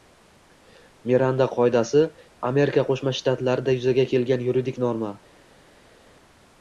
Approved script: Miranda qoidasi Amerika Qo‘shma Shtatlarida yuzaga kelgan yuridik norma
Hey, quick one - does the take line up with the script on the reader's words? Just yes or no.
yes